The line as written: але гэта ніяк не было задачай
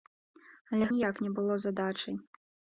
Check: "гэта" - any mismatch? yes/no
yes